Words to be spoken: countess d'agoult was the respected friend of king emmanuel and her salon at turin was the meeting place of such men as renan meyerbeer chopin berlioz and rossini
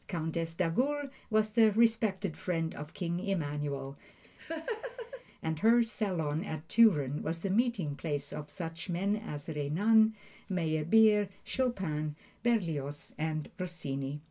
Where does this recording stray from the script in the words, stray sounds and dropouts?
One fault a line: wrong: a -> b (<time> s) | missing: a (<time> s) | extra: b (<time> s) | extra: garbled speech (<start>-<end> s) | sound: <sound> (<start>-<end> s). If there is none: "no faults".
sound: laugh (4.2-5.2 s)